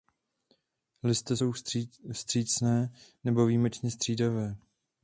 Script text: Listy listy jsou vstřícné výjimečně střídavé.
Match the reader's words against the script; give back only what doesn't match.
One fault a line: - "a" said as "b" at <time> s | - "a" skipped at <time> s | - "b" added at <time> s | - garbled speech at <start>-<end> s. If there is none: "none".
- "listy" skipped at 1.4 s
- "nebo" added at 3.2 s